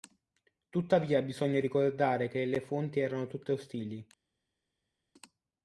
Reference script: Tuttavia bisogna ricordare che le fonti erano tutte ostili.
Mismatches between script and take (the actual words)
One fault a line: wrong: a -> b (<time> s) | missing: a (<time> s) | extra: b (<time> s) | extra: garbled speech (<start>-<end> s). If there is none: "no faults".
no faults